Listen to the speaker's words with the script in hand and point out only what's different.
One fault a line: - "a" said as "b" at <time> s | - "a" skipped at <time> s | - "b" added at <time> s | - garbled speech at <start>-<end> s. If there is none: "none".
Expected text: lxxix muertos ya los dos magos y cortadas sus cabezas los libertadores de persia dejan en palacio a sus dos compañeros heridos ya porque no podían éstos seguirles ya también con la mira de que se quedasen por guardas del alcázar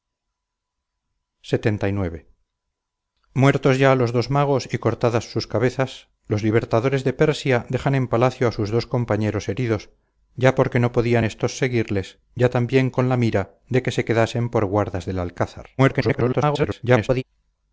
- garbled speech at 15.8-17.2 s